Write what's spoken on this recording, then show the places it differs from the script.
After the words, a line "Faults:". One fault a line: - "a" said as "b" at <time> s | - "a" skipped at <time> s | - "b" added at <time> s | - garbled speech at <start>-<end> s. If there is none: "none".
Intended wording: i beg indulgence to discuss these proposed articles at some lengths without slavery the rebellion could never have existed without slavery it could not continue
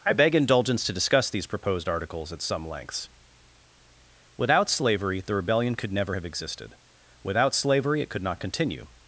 i beg indulgence to discuss these proposed articles at some lengths without slavery the rebellion could never have existed without slavery it could not continue
Faults:
none